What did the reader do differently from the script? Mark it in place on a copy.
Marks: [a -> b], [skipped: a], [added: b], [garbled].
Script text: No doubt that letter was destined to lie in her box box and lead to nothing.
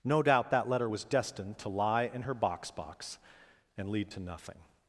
No doubt that letter was destined to lie in her box box and lead to nothing.